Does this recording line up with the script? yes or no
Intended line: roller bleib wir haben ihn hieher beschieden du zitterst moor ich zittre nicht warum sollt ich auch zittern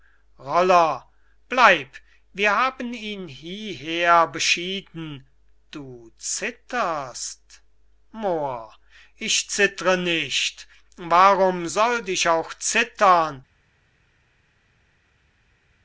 yes